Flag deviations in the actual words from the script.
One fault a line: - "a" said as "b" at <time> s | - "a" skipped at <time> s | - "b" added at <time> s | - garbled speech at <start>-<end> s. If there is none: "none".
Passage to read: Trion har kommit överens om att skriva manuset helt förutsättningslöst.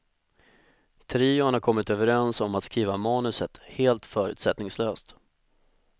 none